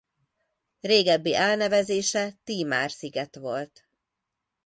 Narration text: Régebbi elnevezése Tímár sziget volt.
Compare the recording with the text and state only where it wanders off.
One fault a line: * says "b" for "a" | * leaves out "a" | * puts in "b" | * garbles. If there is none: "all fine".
all fine